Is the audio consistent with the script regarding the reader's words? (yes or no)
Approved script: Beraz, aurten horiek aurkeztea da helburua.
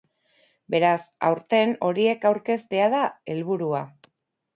yes